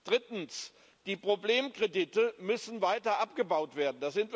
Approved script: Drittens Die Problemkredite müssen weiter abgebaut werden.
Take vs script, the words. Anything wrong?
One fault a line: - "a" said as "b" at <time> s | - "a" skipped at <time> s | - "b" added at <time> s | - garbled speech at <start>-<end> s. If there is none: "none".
none